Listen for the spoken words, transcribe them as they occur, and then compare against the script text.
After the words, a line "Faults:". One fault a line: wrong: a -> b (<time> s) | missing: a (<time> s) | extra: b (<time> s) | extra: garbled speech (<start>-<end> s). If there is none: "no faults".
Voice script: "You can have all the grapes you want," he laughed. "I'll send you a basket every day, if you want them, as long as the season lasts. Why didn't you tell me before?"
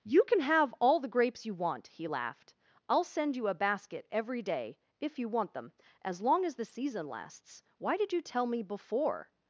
"You can have all the grapes you want," he laughed. "I'll send you a basket every day, if you want them, as long as the season lasts. Why did you tell me before?"
Faults:
wrong: didn't -> did (8.0 s)